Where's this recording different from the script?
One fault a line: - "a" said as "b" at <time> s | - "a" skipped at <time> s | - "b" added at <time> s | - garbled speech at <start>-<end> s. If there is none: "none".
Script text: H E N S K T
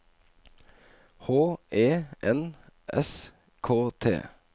none